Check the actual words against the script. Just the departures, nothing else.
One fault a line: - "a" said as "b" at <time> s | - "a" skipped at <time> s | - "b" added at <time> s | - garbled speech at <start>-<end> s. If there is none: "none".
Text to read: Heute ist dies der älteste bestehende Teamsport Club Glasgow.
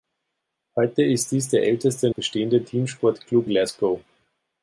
none